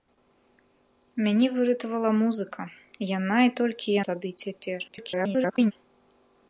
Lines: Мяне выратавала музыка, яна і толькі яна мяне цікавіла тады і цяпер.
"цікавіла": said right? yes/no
no